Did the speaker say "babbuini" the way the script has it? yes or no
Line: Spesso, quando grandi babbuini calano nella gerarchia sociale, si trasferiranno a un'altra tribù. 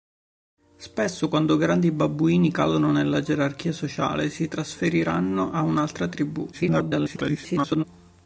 yes